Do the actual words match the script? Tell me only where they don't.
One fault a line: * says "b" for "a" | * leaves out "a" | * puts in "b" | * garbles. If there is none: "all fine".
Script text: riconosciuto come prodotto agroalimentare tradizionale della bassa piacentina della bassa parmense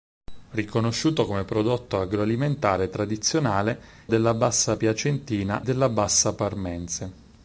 all fine